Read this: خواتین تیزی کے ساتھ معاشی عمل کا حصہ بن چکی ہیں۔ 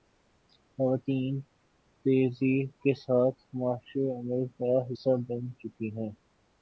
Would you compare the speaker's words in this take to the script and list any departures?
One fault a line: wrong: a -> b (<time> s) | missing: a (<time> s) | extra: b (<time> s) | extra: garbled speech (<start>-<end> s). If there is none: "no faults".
no faults